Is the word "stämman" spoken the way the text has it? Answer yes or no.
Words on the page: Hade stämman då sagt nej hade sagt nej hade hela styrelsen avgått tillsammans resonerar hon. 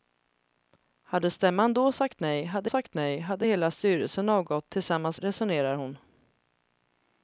yes